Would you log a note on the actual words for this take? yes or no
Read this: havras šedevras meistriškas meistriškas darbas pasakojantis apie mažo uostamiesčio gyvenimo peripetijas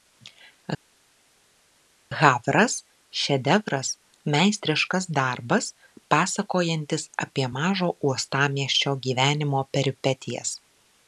yes